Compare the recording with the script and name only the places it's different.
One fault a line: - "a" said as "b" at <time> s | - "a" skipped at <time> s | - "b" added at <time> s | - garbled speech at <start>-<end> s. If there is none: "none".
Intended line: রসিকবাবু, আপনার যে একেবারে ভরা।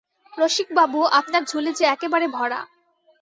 - "ঝুলি" added at 1.4 s